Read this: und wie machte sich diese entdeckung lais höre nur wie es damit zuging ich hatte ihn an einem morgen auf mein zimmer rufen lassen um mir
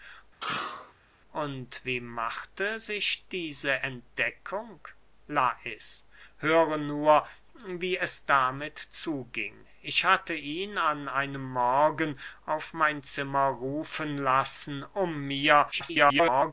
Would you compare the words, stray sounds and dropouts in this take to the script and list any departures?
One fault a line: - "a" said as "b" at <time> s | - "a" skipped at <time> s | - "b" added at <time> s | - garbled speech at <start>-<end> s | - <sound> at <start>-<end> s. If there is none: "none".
- sneeze at 0.4-0.9 s
- garbled speech at 15.7-16.5 s